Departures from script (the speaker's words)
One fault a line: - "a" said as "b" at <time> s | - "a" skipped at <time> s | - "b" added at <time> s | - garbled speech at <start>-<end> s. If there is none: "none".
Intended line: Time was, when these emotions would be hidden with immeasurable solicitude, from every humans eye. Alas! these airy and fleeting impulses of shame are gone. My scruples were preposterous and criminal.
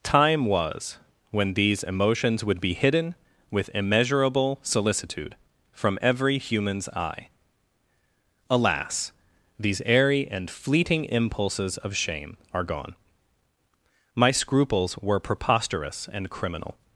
none